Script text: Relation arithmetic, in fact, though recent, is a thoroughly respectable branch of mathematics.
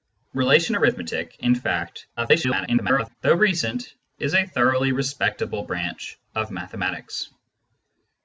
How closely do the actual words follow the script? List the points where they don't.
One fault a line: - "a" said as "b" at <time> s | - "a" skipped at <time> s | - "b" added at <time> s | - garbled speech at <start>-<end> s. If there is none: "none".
- garbled speech at 2.2-3.2 s